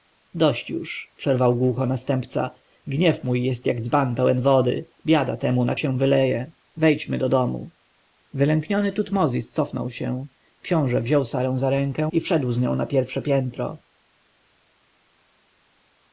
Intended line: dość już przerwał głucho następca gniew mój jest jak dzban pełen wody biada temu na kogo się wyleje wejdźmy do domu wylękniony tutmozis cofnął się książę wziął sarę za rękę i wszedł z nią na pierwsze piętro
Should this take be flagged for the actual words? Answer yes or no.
yes